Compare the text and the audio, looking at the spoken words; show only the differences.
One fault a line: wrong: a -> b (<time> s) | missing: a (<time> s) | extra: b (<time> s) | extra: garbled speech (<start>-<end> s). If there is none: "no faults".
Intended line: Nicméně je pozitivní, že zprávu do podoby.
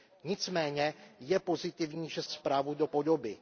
no faults